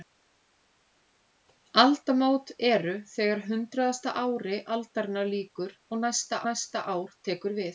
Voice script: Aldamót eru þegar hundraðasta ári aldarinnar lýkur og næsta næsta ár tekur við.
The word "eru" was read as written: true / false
true